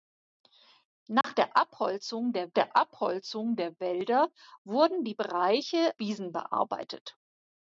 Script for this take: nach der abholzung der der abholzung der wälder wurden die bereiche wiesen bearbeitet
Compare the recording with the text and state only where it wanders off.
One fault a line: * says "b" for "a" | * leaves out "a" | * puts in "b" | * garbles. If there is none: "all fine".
all fine